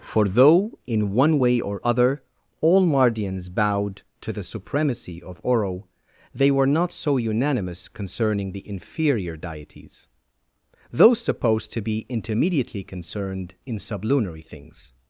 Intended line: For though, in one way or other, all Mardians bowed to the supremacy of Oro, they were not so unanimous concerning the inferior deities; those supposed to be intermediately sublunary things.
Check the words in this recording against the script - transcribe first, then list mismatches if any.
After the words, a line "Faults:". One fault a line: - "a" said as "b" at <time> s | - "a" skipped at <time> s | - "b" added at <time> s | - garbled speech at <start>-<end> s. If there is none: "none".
For though, in one way or other, all Mardians bowed to the supremacy of Oro, they were not so unanimous concerning the inferior deities; those supposed to be intermediately concerned in sublunary things.
Faults:
- "concerned in" added at 12.8 s